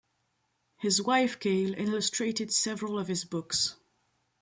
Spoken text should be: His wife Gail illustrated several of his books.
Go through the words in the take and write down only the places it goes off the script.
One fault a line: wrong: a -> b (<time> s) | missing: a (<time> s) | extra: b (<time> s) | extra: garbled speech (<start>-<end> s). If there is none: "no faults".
no faults